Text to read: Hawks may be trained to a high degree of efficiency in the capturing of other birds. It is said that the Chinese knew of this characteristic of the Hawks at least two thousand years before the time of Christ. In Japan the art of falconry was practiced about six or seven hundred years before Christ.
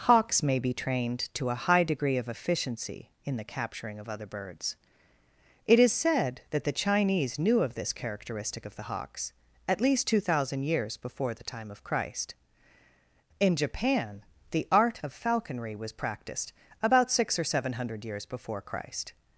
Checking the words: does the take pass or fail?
pass